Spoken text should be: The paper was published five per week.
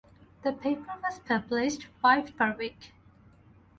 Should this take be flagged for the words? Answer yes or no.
no